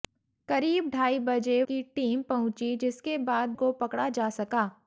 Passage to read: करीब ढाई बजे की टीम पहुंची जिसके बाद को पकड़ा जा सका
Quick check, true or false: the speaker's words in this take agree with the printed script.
true